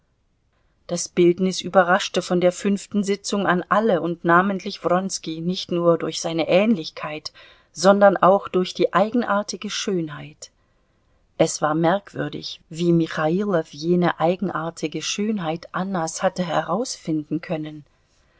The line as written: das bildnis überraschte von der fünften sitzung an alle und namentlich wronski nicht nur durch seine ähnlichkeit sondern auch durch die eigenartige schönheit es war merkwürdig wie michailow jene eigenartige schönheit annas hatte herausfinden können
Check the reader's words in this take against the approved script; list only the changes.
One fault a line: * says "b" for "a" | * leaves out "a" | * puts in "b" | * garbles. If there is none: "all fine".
all fine